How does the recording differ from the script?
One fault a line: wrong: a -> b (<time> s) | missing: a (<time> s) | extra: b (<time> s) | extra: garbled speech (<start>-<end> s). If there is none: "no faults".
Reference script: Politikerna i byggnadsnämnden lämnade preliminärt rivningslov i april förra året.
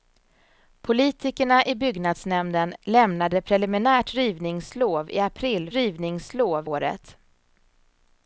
wrong: förra -> rivningslov (5.7 s)